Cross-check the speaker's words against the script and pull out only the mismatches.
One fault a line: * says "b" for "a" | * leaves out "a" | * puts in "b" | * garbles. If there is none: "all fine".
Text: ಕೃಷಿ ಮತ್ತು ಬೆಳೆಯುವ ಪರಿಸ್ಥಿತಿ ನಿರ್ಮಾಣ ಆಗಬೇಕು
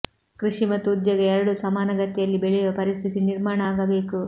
* puts in "ಉದ್ಯೋಗ ಎರಡೂ ಸಮಾನಗತಿಯಲ್ಲಿ"